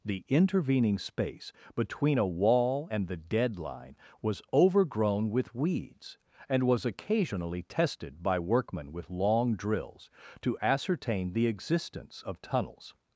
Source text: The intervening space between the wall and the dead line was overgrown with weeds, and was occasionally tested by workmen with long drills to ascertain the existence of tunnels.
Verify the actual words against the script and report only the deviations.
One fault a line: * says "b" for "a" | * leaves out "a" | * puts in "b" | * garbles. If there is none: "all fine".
* says "a" for "the"